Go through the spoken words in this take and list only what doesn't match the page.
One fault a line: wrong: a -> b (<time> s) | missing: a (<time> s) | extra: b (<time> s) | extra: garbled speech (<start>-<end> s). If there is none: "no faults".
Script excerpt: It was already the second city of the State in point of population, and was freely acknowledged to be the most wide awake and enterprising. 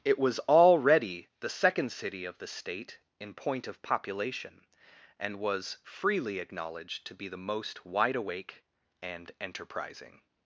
no faults